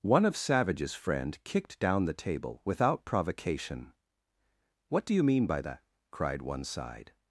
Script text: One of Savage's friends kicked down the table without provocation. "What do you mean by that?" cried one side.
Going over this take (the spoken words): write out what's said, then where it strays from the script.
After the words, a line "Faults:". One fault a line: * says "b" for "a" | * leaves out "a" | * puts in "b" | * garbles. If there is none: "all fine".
One of Savage's friend kicked down the table without provocation. "What do you mean by that?" cried one side.
Faults:
* says "friend" for "friends"